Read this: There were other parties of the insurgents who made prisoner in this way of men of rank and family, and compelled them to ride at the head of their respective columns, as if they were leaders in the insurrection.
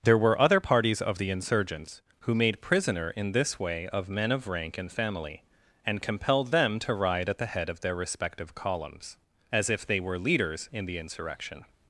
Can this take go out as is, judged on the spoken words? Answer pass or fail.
pass